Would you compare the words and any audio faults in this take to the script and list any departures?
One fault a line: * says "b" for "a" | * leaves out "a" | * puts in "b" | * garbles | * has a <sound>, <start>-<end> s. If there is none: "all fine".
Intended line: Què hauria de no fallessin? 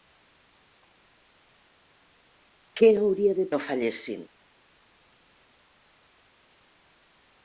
all fine